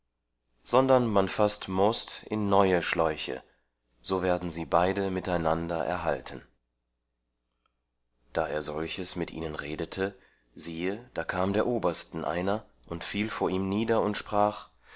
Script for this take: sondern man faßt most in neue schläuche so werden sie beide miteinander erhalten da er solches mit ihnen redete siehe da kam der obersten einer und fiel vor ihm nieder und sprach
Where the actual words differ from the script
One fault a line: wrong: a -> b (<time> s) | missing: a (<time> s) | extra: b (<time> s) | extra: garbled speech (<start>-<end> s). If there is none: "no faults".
no faults